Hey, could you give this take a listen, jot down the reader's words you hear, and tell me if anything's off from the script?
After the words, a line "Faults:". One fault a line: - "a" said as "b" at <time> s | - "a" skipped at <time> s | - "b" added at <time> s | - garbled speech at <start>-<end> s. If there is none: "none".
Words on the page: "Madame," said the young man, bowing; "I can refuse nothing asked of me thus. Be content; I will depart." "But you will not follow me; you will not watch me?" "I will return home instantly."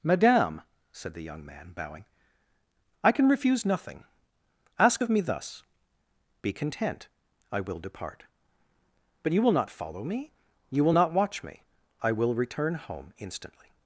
"Madame," said the young man, bowing; "I can refuse nothing ask of me thus. Be content; I will depart." "But you will not follow me; you will not watch me?" "I will return home instantly."
Faults:
- "asked" said as "ask" at 4.8 s